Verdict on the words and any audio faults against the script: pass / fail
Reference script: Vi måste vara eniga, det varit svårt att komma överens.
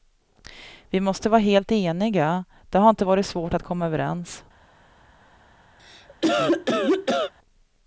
fail